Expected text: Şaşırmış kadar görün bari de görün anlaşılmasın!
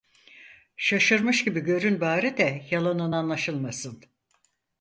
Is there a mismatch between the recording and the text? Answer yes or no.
yes